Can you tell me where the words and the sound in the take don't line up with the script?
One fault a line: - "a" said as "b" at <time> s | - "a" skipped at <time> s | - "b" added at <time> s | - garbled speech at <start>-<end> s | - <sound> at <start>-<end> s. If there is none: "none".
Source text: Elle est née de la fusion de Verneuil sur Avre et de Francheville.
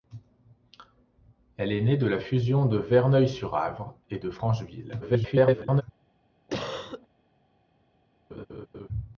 - garbled speech at 5.0-5.8 s
- cough at 6.5-7.1 s
- laugh at 8.3-8.9 s